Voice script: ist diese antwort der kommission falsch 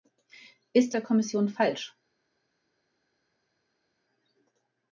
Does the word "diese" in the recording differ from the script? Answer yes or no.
yes